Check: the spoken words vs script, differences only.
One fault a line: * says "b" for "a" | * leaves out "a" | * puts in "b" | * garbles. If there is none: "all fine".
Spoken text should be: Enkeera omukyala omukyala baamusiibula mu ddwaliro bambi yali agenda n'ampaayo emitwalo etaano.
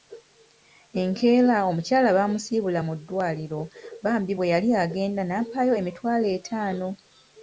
* leaves out "omukyala"
* puts in "bwe"